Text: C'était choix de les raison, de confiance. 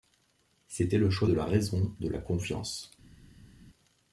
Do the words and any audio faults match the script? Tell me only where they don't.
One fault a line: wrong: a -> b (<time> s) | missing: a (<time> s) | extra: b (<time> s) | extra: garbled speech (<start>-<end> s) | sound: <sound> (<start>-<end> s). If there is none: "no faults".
extra: le (1.0 s)
wrong: les -> la (1.3 s)
extra: la (2.1 s)